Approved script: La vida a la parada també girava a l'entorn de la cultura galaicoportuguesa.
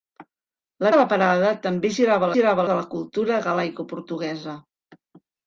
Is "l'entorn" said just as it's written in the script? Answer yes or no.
no